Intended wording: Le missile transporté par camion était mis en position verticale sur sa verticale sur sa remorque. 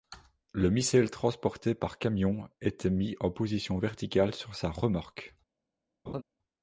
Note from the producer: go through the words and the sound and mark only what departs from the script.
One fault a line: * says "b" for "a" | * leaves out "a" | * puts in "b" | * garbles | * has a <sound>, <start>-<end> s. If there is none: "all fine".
* leaves out "verticale sur sa"
* has a laugh, 6.1-6.2 s